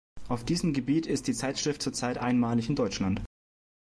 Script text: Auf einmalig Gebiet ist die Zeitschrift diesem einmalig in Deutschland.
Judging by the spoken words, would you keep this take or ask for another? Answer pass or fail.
fail